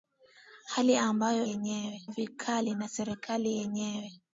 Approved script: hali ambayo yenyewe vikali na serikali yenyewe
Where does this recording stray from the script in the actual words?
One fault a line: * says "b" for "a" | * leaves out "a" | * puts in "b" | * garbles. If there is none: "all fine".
all fine